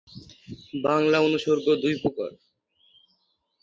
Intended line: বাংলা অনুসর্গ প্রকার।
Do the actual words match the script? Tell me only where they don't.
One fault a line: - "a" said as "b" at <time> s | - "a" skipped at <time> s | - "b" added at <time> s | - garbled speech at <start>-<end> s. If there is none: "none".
- "দুই" added at 1.8 s